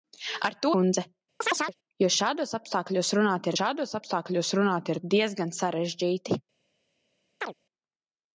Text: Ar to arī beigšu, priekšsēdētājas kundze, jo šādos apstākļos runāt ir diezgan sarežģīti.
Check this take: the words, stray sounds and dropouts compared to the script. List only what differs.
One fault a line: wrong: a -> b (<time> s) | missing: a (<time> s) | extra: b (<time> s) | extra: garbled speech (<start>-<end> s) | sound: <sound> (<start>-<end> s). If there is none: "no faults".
wrong: arī beigšu priekšsēdētājas kundze jo -> kundze jo šādos apstākļos runāt (0.8 s)
sound: chirp (1.4-1.7 s)
sound: chirp (7.4-7.5 s)